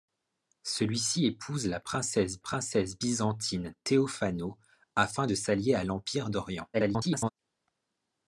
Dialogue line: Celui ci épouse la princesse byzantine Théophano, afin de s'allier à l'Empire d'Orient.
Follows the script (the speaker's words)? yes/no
no